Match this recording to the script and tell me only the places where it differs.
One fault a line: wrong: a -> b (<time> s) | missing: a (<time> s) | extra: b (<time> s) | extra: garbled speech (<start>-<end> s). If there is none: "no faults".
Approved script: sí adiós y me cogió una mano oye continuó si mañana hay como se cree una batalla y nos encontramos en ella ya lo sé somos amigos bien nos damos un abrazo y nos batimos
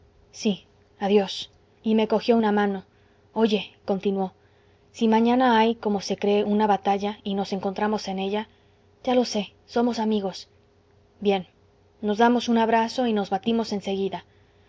no faults